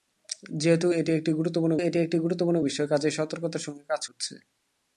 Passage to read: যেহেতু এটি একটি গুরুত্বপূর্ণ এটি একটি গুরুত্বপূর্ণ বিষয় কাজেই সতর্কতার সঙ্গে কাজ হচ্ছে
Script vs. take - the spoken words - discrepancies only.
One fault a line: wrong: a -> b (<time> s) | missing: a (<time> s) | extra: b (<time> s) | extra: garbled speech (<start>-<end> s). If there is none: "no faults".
no faults